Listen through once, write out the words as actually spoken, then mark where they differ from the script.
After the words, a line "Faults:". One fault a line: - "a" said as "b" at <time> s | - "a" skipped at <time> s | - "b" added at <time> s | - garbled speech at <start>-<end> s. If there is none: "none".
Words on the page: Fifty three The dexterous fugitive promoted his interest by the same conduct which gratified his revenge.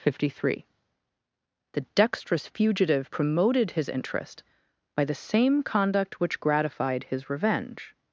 Fifty three The dexterous fugitive promoted his interest by the same conduct which gratified his revenge.
Faults:
none